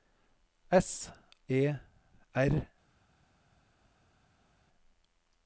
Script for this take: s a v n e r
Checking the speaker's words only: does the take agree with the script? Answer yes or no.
no